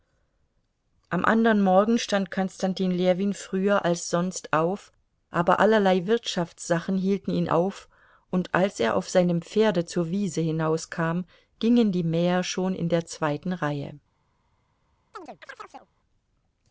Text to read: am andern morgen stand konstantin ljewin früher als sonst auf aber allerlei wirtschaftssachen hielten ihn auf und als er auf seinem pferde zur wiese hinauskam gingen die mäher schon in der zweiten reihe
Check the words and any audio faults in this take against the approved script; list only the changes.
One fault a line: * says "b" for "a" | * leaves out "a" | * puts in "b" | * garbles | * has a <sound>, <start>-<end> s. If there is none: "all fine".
* has a chirp, 15.1-15.9 s